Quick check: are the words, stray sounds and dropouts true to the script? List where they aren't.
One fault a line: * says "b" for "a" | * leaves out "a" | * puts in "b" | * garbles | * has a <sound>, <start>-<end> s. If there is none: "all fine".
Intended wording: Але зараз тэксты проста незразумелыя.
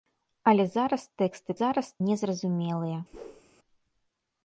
* says "зараз" for "проста"
* has a whoosh, 3.1-3.4 s